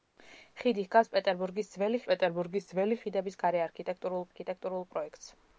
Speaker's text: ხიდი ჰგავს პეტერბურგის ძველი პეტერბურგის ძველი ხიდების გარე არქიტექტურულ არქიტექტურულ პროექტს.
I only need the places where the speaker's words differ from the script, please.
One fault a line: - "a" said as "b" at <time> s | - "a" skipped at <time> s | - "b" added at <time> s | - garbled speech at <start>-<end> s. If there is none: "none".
none